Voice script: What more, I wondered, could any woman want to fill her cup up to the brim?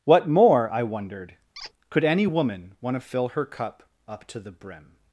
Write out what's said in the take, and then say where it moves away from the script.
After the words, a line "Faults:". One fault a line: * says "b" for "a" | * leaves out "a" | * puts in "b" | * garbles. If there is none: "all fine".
What more, I wondered, could any woman want to fill her cup up to the brim?
Faults:
all fine